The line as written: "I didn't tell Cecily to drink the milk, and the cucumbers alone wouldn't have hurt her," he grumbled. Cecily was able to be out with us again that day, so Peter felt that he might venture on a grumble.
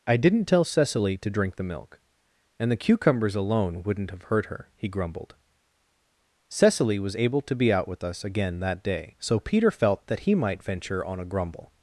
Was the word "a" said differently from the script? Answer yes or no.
no